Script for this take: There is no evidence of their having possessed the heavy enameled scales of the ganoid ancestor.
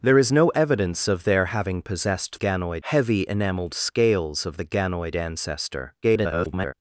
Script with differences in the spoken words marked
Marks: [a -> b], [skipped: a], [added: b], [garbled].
There is no evidence of their having possessed [the -> ganoid] heavy enameled scales of the ganoid ancestor. [garbled]